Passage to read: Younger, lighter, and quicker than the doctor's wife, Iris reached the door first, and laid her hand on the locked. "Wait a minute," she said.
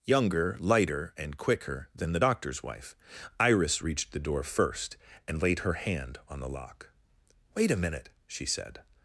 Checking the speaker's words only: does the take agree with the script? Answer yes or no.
no